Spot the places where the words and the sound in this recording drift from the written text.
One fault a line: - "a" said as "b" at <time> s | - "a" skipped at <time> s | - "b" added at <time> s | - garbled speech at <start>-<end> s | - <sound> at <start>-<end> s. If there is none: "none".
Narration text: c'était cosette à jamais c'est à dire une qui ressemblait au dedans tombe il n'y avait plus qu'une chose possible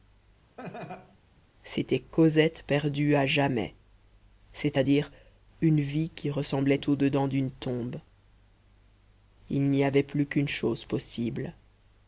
- laugh at 0.6-1.2 s
- "perdue" added at 2.7 s
- "vie" added at 5.8 s
- "d'une" added at 7.3 s